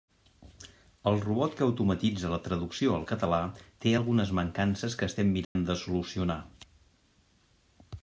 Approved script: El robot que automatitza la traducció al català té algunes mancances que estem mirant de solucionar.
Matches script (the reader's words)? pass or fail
pass